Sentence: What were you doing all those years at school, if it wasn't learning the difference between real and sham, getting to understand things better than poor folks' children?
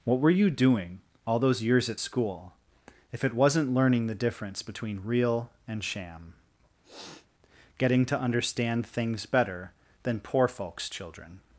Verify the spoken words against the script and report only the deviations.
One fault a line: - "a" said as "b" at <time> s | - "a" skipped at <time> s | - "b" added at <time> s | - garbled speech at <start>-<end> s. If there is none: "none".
none